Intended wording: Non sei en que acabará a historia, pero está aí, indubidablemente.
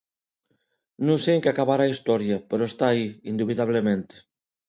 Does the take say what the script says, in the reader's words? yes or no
yes